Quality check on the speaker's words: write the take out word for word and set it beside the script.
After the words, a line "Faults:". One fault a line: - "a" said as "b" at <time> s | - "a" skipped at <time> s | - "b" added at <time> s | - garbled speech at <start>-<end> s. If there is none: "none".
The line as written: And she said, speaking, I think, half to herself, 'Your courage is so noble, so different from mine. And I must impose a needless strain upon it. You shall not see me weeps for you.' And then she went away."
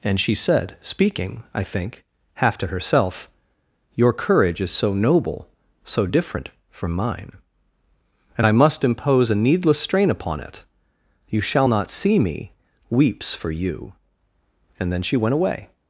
And she said, speaking, I think, half to herself, 'Your courage is so noble, so different from mine. And I must impose a needless strain upon it. You shall not see me weeps for you.' And then she went away."
Faults:
none